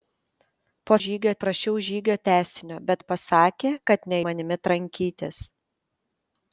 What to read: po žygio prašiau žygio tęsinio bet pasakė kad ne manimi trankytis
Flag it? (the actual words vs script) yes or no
no